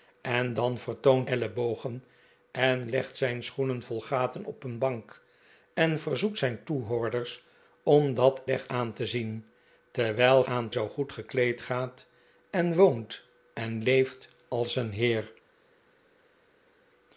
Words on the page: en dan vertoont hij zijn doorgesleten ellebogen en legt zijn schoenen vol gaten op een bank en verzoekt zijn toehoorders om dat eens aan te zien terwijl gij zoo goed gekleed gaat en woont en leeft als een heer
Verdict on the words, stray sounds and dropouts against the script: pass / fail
fail